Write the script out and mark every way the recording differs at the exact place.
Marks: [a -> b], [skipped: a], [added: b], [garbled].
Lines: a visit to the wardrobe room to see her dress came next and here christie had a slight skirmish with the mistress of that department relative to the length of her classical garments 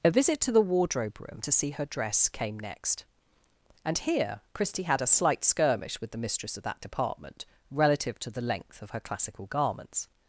a visit to the wardrobe room to see her dress came next and here christie had a slight skirmish with the mistress of that department relative to the length of her classical garments